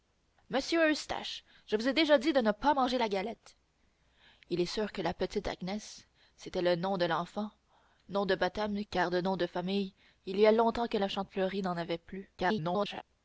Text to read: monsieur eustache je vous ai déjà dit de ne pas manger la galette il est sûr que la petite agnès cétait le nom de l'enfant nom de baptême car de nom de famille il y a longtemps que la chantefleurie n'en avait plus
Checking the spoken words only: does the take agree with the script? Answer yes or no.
no